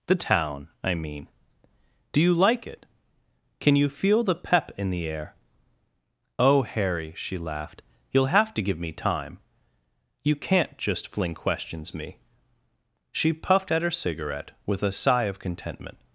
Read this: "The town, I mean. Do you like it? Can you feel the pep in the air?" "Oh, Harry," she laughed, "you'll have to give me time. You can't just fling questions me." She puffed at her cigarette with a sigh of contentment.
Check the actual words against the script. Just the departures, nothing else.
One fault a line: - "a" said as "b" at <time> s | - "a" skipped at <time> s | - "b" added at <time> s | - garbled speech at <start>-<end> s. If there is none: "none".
none